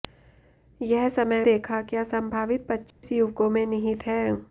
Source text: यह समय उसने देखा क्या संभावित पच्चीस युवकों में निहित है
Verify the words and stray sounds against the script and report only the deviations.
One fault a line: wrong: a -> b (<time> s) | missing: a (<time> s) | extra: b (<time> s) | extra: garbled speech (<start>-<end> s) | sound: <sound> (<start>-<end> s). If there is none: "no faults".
missing: उसने (1.4 s)
sound: dropout (2.9-3.0 s)